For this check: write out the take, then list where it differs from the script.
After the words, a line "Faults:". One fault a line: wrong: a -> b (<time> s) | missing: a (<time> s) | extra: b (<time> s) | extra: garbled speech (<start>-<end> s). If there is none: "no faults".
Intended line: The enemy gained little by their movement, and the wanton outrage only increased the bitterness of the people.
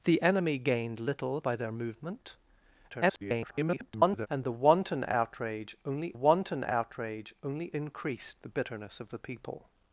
The enemy gained little by their movement, [garbled] and the wanton outrage only wanton outrage only increased the bitterness of the people.
Faults:
extra: garbled speech (2.9-4.3 s)
extra: wanton outrage only (6.1 s)